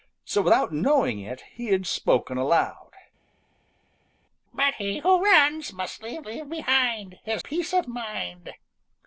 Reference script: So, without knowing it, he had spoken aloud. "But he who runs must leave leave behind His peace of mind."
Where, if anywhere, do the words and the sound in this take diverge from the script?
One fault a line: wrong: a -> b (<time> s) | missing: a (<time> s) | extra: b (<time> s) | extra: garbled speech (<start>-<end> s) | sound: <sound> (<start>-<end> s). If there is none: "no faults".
no faults